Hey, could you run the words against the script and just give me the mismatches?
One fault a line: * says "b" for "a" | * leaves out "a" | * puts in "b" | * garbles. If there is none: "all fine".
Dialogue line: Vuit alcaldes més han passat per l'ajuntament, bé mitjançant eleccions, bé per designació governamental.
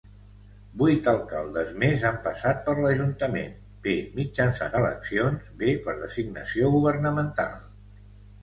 all fine